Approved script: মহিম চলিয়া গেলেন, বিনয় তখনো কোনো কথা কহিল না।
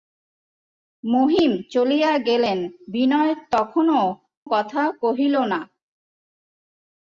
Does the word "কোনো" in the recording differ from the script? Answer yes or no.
yes